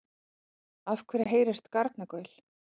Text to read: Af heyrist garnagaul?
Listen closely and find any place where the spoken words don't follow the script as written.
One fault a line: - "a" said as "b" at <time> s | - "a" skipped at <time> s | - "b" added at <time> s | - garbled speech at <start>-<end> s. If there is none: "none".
- "hverju" added at 1.1 s